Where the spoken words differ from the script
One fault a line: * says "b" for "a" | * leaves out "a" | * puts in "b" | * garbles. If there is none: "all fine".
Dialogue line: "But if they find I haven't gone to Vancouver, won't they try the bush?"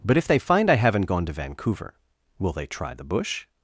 * says "will" for "won't"